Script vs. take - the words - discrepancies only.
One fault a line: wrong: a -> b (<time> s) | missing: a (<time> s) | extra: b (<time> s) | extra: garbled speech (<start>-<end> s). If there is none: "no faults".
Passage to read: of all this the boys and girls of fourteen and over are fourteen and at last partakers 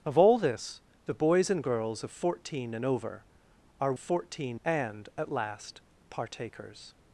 no faults